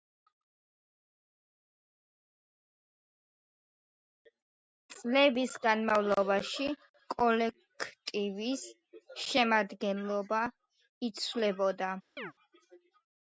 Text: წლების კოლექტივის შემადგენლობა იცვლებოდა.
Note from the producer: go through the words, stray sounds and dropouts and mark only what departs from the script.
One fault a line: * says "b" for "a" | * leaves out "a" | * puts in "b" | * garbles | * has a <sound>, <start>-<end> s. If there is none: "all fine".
* puts in "განმავლობაში"
* has a chirp, 12.2-12.3 s